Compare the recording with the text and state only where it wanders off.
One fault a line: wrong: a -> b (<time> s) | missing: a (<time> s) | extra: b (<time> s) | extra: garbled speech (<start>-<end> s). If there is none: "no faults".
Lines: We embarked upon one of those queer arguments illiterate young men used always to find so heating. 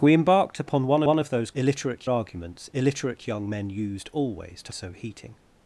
extra: one (1.0 s)
wrong: queer -> illiterate (1.5 s)
missing: find (4.7 s)